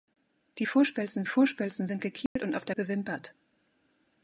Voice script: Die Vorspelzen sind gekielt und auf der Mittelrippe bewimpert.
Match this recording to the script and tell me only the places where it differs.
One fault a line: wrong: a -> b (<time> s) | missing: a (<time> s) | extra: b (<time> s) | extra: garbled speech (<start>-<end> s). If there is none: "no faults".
extra: Vorspelzen (1.2 s)
missing: Mittelrippe (2.8 s)